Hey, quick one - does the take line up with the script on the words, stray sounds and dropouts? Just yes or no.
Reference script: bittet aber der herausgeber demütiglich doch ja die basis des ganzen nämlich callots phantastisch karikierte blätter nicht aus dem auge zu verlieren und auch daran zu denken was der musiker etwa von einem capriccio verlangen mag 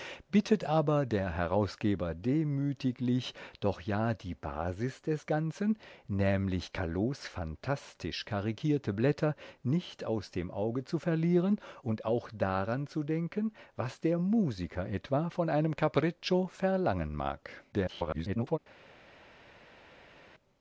no